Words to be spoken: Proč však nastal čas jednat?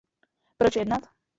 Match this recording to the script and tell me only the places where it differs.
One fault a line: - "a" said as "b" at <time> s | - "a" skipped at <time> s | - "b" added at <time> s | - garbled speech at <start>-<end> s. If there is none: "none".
- "však nastal čas" skipped at 0.8 s